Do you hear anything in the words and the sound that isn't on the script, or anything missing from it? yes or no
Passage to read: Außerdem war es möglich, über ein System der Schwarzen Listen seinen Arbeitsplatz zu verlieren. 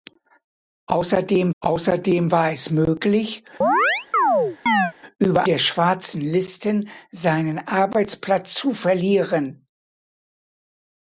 yes